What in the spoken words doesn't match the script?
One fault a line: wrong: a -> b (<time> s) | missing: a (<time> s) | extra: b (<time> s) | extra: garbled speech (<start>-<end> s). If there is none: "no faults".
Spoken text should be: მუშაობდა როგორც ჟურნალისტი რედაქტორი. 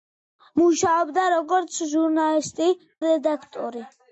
no faults